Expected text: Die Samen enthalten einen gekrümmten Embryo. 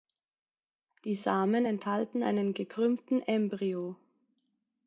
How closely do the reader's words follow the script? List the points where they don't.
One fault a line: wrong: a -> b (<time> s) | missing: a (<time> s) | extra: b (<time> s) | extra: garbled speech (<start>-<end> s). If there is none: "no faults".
no faults